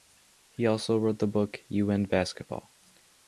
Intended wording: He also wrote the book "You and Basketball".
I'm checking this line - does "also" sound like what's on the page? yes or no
yes